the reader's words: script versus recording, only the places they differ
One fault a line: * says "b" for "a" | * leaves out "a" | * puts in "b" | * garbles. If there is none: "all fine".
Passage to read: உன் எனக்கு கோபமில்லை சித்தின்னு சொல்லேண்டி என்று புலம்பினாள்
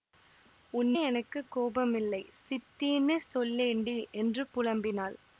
all fine